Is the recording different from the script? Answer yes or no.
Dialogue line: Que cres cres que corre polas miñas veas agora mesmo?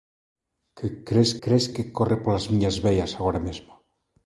no